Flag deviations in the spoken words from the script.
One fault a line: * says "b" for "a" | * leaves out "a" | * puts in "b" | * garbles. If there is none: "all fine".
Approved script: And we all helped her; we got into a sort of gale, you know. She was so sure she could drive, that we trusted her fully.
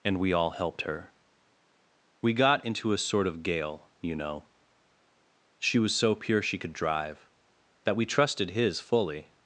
* says "pure" for "sure"
* says "his" for "her"